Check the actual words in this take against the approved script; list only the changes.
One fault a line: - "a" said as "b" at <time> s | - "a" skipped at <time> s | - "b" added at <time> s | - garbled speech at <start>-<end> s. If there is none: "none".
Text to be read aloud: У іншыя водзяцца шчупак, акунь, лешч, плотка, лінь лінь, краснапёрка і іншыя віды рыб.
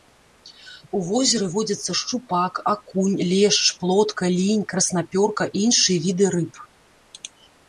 - "іншыя" said as "возеры" at 1.1 s
- "лінь" skipped at 4.6 s